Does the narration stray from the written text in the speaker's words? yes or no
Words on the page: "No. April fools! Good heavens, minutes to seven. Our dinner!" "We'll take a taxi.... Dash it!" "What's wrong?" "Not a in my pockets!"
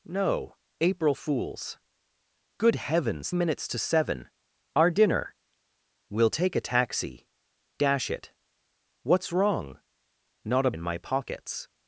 no